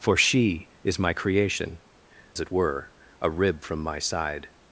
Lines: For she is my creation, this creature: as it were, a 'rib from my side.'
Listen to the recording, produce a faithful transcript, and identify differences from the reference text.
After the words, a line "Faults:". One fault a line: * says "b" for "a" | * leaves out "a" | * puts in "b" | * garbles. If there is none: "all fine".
For she is my creation, it were, a 'rib from my side.'
Faults:
* leaves out "this creature as"